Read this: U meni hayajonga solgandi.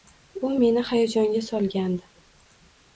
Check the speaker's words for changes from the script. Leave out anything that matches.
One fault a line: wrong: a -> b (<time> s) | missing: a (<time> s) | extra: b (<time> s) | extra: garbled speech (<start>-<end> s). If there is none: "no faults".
no faults